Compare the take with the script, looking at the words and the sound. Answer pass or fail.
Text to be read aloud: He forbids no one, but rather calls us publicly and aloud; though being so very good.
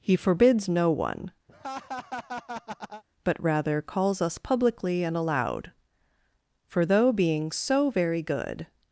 fail